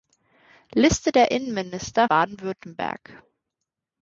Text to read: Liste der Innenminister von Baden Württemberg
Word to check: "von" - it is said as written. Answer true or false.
false